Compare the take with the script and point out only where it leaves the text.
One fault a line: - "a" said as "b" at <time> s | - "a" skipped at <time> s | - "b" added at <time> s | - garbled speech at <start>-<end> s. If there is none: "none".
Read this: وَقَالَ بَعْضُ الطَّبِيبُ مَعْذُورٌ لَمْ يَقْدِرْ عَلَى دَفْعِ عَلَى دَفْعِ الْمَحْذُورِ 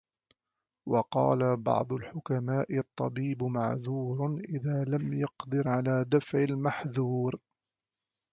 - "الْحُكَمَاءِ" added at 1.9 s
- "إذَا" added at 4.5 s
- "عَلَى دَفْعِ" skipped at 6.4 s